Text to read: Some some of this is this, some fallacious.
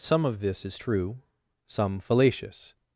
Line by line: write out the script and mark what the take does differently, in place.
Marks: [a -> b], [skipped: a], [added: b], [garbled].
Some [skipped: some] of this is [this, -> true] some fallacious.